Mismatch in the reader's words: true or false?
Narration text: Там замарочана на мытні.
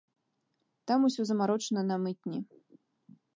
true